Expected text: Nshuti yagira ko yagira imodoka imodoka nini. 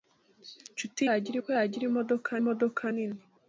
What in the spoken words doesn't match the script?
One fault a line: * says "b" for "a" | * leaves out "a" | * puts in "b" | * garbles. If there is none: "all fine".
all fine